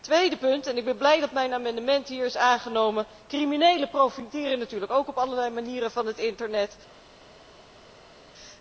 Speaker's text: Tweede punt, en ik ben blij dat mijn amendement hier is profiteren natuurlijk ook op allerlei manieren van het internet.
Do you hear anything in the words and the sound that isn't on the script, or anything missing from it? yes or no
yes